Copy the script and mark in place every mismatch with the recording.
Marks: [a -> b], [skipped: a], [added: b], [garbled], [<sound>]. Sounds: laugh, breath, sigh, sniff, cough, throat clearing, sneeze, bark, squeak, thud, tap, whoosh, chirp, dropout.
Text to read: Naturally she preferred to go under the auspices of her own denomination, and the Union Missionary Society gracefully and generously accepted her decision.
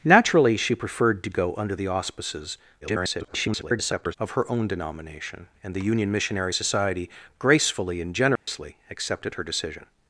Naturally she preferred to go under the auspices [garbled] of her own denomination, and the Union Missionary Society gracefully and generously [dropout] accepted her decision.